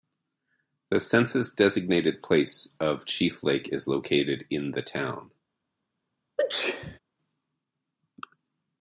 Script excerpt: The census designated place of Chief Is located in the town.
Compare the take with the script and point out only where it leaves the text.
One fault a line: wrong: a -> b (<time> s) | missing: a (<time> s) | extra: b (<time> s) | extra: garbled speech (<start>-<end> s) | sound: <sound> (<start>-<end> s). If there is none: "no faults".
extra: Lake (3.4 s)
sound: sneeze (6.4-7.0 s)